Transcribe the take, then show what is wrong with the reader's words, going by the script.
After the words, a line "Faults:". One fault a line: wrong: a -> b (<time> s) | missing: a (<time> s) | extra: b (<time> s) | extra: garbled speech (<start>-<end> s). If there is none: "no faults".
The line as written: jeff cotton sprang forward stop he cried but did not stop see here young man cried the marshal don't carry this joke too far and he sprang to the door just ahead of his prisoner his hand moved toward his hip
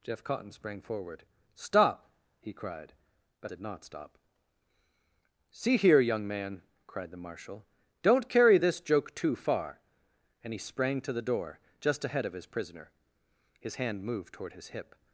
jeff cotton sprang forward stop he cried but did not stop see here young man cried the marshal don't carry this joke too far and he sprang to the door just ahead of his prisoner his hand moved toward his hip
Faults:
no faults